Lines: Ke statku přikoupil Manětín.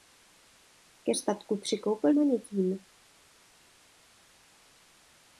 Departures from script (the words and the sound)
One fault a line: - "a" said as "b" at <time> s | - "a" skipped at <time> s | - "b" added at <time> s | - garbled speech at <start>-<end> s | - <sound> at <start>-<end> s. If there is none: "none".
none